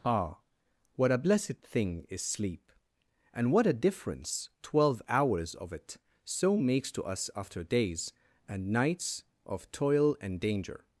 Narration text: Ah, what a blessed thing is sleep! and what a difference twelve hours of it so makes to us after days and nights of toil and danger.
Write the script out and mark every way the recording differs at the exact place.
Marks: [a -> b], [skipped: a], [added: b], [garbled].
Ah, what a blessed thing is sleep! and what a difference twelve hours of it so makes to us after days and nights of toil and danger.